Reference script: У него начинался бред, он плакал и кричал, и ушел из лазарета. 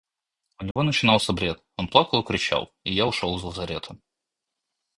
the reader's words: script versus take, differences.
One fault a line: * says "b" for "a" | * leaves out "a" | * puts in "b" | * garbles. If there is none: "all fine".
* puts in "я"